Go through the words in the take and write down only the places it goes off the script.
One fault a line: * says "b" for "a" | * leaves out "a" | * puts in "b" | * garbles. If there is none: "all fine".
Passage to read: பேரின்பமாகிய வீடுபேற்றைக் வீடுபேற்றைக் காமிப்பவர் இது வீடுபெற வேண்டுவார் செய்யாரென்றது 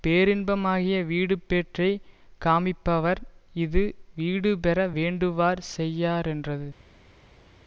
* leaves out "வீடுபேற்றைக்"